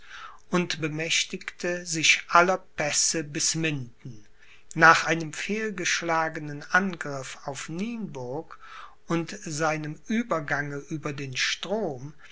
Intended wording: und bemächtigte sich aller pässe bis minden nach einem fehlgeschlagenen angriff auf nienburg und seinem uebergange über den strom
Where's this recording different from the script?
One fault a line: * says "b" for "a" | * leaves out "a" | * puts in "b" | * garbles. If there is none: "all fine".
all fine